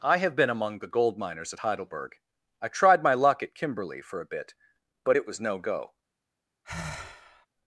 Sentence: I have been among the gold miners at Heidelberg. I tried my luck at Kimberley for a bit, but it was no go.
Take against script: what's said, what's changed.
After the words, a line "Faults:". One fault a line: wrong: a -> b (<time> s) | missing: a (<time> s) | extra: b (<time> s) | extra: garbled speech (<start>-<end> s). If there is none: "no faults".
I have been among the gold miners at Heidelberg. I tried my luck at Kimberley for a bit, but it was no go.
Faults:
no faults